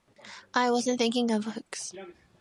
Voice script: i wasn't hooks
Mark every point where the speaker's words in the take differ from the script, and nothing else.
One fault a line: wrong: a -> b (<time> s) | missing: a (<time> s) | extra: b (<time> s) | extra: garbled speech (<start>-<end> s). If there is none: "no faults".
extra: thinking of (1.0 s)